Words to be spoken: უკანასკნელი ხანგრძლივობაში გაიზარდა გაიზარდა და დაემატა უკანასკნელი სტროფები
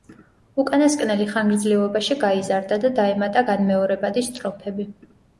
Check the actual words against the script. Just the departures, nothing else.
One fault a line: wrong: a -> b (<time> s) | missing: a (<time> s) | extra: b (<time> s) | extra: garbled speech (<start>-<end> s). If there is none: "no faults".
missing: გაიზარდა (2.8 s)
wrong: უკანასკნელი -> განმეორებადი (3.5 s)